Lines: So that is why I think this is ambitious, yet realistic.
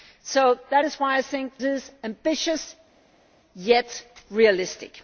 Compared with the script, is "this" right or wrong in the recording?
wrong